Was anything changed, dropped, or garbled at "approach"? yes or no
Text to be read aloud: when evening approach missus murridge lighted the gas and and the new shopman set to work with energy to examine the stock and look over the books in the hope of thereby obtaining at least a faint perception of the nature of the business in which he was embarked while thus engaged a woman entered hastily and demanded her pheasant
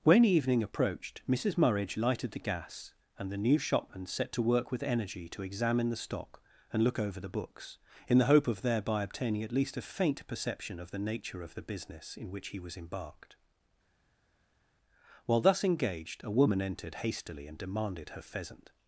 yes